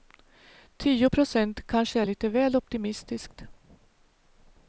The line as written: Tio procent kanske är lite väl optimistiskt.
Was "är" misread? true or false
false